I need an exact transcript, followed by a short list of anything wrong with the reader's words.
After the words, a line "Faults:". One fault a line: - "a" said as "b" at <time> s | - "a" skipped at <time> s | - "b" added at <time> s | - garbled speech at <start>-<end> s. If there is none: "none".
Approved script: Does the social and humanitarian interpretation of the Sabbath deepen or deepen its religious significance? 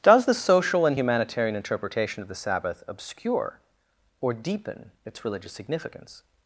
Does the social and humanitarian interpretation of the Sabbath obscure or deepen its religious significance?
Faults:
- "deepen" said as "obscure" at 2.9 s